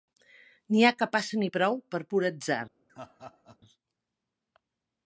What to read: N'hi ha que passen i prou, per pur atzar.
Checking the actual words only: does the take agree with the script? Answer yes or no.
yes